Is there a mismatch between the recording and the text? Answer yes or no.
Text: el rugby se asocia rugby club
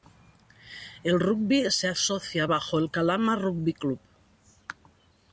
yes